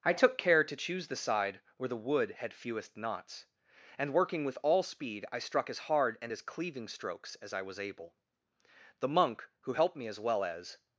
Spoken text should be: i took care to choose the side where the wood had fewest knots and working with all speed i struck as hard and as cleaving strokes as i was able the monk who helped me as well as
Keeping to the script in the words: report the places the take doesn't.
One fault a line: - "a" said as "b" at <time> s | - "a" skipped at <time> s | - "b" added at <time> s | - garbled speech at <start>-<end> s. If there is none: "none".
none